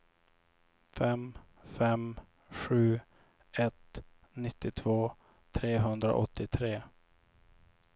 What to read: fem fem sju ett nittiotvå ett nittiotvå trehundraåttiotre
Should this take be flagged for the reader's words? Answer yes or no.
yes